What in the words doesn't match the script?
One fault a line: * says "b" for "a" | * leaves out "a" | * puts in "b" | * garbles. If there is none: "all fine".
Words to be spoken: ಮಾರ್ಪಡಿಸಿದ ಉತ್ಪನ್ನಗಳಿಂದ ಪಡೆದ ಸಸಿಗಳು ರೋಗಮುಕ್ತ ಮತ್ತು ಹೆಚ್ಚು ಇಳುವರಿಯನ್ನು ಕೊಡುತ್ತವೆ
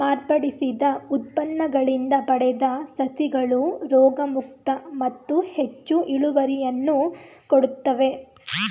all fine